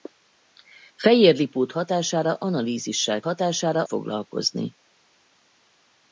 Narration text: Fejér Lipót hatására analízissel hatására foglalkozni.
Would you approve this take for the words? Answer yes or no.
yes